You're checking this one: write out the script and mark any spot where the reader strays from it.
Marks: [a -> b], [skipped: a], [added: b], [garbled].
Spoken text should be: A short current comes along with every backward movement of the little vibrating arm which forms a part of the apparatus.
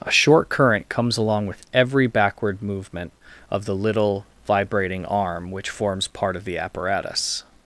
A short current comes along with every backward movement of the little vibrating arm which forms [skipped: a] part of the apparatus.